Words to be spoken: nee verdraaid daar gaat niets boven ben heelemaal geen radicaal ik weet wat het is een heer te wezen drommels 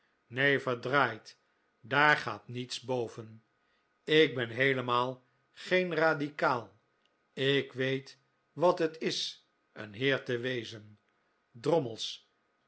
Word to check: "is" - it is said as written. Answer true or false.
true